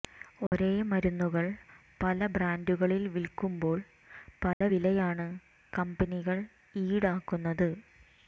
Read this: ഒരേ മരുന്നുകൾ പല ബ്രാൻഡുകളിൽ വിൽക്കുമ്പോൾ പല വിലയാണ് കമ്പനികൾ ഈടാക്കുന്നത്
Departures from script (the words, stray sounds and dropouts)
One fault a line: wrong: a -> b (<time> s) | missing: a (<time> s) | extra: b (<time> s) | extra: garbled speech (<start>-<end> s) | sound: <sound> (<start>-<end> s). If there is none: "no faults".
sound: dropout (0.5-0.5 s)
sound: dropout (4.5-4.6 s)